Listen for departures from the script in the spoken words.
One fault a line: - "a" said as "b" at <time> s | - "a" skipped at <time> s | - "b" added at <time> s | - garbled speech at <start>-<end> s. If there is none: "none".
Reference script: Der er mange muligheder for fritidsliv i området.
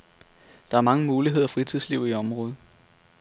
- "for" skipped at 1.5 s